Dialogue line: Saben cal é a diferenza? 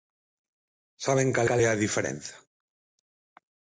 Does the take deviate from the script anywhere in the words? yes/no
yes